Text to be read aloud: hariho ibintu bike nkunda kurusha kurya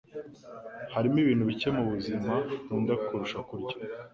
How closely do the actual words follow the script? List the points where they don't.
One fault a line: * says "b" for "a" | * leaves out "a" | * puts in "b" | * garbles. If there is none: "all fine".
* puts in "mubuzima"